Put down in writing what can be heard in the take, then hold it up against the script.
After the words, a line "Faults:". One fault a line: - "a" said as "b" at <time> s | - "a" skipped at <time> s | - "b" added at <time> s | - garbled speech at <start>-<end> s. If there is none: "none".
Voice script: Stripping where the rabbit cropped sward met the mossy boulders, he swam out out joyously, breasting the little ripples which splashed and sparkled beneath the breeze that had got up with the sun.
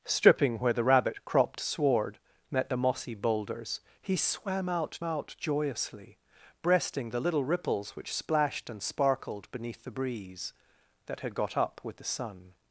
Stripping where the rabbit cropped sward met the mossy boulders, he swam out out joyously, breasting the little ripples which splashed and sparkled beneath the breeze that had got up with the sun.
Faults:
none